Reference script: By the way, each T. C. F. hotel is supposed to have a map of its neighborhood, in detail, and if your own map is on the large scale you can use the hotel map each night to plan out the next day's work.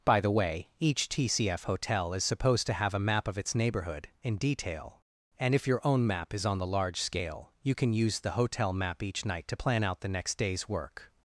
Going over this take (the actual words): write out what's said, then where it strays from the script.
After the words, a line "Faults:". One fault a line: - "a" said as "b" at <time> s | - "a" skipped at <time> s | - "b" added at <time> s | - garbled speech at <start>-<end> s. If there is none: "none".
By the way, each T. C. F. hotel is supposed to have a map of its neighborhood, in detail, and if your own map is on the large scale you can use the hotel map each night to plan out the next day's work.
Faults:
none